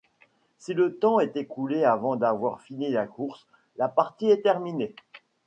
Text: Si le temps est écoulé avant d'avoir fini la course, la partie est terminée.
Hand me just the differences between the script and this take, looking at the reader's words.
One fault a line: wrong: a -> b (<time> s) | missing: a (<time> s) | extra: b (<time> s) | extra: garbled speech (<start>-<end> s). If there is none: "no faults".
no faults